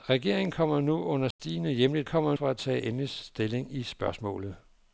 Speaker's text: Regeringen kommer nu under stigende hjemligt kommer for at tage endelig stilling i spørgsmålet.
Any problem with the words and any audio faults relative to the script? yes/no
yes